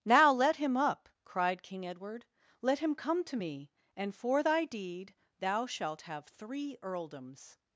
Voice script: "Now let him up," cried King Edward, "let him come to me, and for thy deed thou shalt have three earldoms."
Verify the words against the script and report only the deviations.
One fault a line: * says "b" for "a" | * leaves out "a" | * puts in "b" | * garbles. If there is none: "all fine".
all fine